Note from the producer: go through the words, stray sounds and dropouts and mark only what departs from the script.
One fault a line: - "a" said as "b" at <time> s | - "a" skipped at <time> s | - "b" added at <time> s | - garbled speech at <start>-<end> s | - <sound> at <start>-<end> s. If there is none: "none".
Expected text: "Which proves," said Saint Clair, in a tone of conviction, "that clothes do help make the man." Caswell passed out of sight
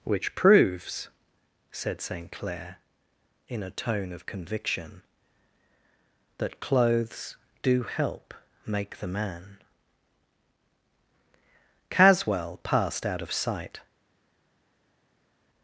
none